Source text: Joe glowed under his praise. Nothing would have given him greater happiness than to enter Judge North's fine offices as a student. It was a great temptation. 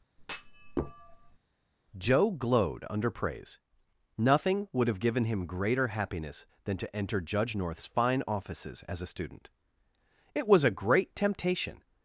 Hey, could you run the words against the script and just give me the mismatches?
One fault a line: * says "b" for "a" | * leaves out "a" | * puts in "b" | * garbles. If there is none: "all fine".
* leaves out "his"